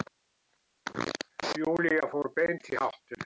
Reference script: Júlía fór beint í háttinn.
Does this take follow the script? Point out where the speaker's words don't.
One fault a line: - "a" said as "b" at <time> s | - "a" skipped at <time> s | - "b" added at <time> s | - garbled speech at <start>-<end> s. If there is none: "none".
none